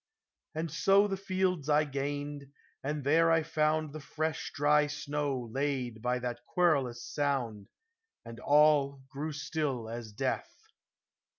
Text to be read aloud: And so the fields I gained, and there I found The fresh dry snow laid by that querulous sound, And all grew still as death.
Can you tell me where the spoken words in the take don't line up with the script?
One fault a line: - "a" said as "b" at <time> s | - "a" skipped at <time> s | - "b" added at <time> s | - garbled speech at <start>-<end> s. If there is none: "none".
none